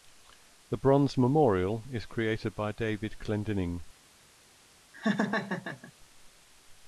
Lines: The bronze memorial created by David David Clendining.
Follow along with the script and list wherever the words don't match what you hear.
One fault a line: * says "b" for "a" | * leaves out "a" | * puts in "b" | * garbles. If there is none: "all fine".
* puts in "is"
* leaves out "David"